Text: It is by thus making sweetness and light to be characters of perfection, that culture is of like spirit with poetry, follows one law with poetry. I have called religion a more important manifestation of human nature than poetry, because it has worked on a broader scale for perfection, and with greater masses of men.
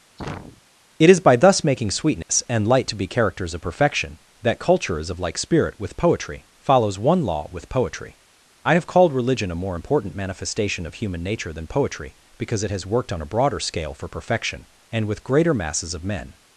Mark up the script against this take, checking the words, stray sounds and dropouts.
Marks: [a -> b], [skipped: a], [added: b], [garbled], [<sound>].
[sneeze] It is by thus making sweetness [dropout] and light to be characters of perfection, that culture is of like spirit with poetry, follows one law with poetry. I have called religion a more important manifestation of human nature than poetry, because it has worked on a broader scale for perfection, and with greater masses of men.